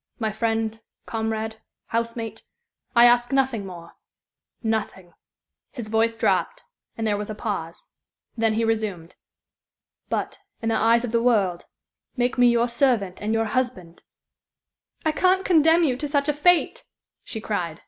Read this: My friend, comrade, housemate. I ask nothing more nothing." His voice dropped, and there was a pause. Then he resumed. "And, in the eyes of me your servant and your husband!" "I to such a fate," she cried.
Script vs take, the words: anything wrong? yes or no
yes